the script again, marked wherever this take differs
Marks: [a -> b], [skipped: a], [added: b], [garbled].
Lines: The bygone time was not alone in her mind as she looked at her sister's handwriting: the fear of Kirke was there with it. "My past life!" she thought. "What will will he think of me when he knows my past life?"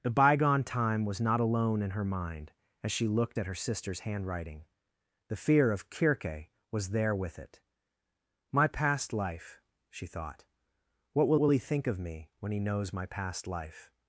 The bygone time was not alone in her mind as she looked at her sister's handwriting: the fear of Kirke was there with it. "My past life!" she thought. "What will will he think of me when he knows my past life?"